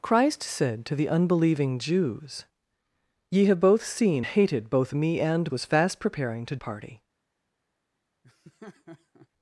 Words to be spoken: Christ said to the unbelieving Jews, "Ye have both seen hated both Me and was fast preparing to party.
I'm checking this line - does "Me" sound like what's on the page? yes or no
yes